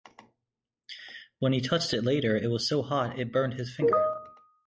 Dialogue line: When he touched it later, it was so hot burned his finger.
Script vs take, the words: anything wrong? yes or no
yes